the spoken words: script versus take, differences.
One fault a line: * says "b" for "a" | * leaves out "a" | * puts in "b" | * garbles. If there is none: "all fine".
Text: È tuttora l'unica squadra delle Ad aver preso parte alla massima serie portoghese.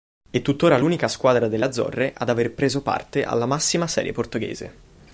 * puts in "Azzorre"